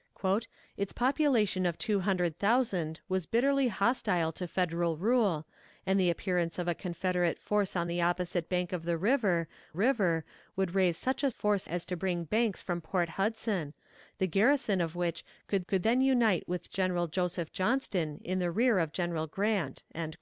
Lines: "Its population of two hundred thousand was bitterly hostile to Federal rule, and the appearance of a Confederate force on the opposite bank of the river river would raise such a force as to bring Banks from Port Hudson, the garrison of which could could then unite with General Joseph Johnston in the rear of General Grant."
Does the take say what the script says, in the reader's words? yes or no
yes